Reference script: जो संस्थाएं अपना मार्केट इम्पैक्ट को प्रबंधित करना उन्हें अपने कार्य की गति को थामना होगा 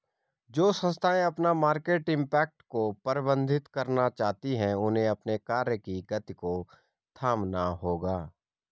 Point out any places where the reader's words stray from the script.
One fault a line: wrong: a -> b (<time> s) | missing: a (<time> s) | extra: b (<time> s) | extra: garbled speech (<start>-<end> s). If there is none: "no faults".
extra: चाहती हैं (4.1 s)